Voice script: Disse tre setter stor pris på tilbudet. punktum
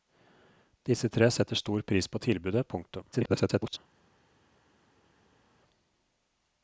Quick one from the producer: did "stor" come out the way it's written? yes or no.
yes